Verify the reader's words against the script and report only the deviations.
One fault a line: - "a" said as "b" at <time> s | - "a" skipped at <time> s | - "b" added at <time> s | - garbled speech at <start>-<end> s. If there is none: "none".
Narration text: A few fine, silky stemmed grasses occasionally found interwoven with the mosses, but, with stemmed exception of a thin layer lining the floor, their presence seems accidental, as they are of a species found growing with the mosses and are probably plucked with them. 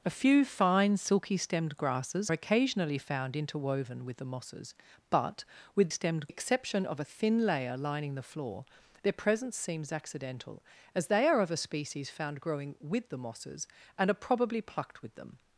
none